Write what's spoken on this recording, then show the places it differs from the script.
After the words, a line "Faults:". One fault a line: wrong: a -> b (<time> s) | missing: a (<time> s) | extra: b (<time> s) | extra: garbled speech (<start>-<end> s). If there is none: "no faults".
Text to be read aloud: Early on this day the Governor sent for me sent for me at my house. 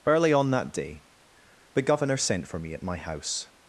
Early on that day the Governor sent for me at my house.
Faults:
wrong: this -> that (0.5 s)
missing: sent for me (2.7 s)